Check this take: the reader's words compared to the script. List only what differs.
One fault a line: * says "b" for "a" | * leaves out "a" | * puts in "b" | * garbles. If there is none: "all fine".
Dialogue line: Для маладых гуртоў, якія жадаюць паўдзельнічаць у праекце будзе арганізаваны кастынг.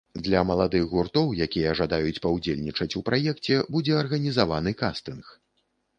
all fine